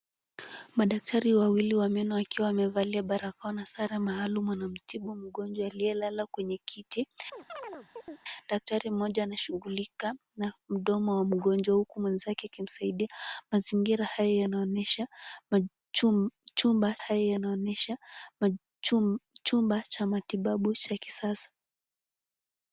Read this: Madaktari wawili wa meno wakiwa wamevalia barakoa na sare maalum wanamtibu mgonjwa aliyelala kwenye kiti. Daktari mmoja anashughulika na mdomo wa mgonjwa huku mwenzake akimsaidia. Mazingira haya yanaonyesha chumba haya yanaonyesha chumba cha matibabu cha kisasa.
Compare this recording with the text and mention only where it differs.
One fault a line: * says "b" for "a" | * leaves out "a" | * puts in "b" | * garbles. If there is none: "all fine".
all fine